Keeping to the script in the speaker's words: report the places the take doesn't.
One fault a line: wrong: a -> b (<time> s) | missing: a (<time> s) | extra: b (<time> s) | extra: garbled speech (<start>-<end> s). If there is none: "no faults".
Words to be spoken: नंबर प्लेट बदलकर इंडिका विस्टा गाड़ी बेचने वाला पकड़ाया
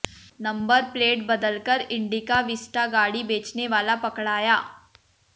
no faults